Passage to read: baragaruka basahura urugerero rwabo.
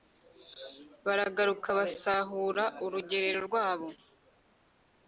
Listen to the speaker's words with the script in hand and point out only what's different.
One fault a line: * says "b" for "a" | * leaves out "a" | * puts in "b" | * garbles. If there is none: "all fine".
all fine